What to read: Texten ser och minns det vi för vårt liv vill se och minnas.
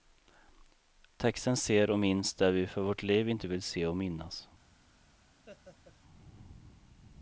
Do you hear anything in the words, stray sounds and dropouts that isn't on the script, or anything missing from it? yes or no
yes